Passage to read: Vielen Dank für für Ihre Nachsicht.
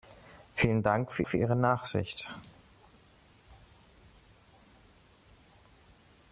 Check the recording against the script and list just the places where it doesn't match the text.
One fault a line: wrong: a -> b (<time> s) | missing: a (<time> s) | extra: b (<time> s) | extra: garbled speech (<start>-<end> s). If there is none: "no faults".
no faults